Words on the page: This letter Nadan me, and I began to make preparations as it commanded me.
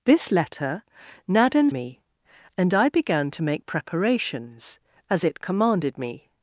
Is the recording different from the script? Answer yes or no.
no